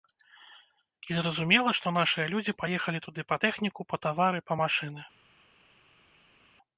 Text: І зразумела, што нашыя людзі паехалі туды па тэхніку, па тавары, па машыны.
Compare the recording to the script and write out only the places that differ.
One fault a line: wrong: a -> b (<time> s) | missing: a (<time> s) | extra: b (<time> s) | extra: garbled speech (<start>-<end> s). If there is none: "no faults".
no faults